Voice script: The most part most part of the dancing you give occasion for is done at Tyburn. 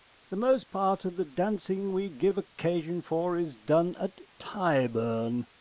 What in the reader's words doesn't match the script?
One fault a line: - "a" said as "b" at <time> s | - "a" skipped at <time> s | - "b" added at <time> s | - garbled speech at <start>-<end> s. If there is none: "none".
- "most part" skipped at 1.1 s
- "you" said as "we" at 1.9 s